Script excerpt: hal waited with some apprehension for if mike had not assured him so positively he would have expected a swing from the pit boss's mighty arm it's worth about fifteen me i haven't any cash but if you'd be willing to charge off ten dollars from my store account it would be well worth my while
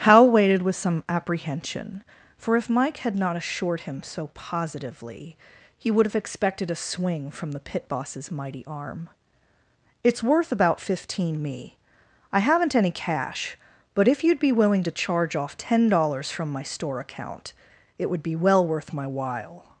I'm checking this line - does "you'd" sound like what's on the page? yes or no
yes